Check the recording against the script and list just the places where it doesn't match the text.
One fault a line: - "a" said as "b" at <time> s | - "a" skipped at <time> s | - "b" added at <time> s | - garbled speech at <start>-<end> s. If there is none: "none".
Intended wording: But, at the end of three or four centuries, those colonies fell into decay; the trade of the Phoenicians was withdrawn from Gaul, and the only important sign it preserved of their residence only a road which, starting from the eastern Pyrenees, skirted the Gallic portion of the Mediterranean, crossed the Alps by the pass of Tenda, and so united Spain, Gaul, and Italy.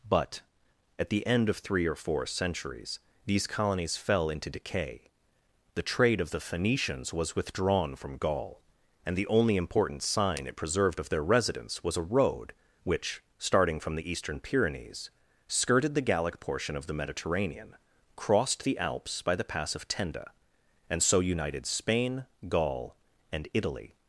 - "those" said as "these" at 3.2 s
- "only" said as "was" at 11.8 s